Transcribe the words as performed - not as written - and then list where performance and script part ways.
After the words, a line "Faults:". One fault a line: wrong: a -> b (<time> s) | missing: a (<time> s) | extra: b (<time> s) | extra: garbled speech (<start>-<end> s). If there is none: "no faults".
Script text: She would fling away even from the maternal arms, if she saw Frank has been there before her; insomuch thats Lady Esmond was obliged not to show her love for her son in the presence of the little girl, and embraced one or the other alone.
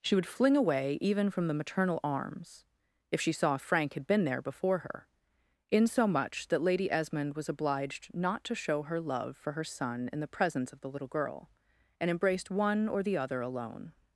She would fling away even from the maternal arms, if she saw Frank had been there before her; insomuch that Lady Esmond was obliged not to show her love for her son in the presence of the little girl, and embraced one or the other alone.
Faults:
wrong: has -> had (3.9 s)
wrong: thats -> that (6.5 s)